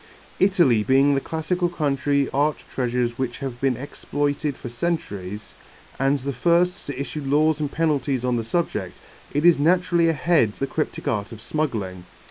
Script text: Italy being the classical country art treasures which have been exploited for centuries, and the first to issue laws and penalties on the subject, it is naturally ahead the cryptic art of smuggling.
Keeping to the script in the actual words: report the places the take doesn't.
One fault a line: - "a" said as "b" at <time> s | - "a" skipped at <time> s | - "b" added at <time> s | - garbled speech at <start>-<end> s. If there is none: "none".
none